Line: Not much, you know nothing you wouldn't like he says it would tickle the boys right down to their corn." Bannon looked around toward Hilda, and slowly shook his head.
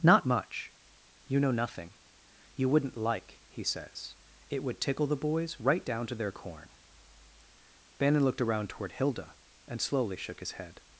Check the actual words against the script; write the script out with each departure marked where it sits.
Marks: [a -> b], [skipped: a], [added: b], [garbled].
Not much, you know nothing you wouldn't like he says it would tickle the boys right down to their corn." Bannon looked around toward Hilda, and slowly shook his head.